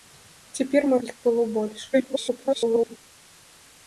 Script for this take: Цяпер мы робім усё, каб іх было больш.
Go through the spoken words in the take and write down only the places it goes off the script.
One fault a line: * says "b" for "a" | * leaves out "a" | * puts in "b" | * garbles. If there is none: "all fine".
* leaves out "робім усё каб"
* garbles